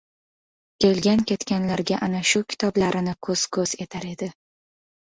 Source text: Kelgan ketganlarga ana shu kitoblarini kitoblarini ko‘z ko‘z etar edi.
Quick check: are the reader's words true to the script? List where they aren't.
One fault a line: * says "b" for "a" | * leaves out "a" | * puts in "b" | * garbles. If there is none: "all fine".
* leaves out "kitoblarini"